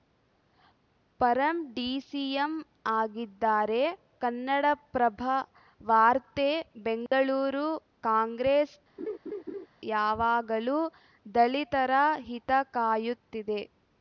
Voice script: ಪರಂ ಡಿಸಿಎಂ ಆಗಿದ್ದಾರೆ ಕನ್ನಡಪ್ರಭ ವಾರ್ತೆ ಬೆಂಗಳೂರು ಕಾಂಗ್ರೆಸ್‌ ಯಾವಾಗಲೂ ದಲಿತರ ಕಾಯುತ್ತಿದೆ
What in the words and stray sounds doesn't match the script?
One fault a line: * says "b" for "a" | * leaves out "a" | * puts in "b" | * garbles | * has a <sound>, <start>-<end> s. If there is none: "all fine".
* has a dropout, 7.1-7.1 s
* has a laugh, 9.0-9.7 s
* puts in "ಹಿತ"